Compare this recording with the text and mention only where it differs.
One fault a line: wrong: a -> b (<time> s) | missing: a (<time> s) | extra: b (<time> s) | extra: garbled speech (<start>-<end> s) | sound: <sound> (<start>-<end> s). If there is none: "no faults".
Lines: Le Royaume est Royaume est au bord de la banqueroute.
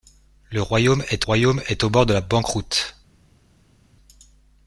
no faults